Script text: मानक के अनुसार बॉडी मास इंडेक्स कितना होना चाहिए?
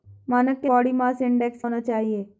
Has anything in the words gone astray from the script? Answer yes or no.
yes